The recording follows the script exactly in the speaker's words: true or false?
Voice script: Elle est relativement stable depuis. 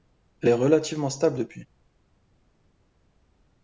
true